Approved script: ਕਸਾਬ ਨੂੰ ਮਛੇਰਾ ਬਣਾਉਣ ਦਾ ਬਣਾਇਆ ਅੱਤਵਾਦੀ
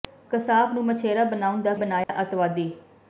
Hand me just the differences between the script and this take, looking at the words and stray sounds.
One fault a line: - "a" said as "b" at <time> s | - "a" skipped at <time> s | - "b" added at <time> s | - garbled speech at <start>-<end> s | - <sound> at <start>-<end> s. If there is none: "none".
- dropout at 2.0-2.1 s